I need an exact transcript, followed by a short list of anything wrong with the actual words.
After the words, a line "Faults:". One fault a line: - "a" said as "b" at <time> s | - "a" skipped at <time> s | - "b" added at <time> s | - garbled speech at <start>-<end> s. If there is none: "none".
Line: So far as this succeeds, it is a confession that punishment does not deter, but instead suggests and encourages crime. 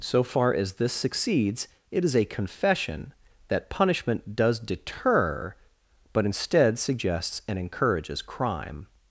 So far as this succeeds, it is a confession that punishment does deter, but instead suggests and encourages crime.
Faults:
- "not" skipped at 4.6 s